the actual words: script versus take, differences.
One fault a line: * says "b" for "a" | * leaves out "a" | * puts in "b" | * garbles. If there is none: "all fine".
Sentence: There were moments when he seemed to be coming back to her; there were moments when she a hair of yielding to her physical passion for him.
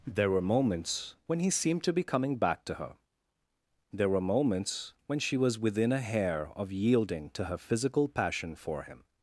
* puts in "was within"